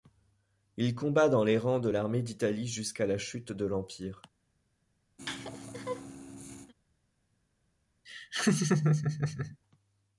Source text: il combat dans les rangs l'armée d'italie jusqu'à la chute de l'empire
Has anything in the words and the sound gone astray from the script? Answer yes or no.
yes